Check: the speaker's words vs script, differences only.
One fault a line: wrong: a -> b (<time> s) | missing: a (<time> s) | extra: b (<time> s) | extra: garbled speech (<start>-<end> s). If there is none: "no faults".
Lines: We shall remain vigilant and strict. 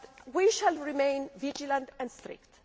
no faults